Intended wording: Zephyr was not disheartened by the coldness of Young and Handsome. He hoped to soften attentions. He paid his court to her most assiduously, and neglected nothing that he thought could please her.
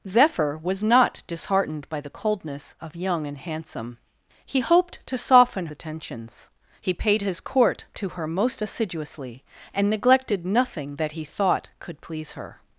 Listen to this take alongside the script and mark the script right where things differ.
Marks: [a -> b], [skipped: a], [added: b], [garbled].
Zephyr was not disheartened by the coldness of Young and Handsome. He hoped to soften attentions. He paid his court to her most assiduously, and neglected nothing that he thought could please her.